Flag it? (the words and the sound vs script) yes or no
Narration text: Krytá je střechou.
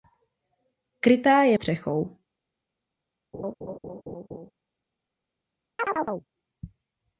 yes